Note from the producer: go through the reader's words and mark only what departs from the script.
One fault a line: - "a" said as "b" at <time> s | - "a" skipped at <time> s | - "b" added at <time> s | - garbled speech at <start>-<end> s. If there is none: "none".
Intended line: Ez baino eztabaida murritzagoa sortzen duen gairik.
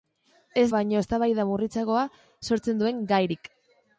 none